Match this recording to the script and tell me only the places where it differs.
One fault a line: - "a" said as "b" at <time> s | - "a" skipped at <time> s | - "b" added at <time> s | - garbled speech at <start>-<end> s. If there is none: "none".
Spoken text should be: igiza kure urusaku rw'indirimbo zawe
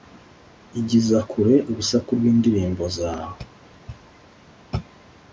none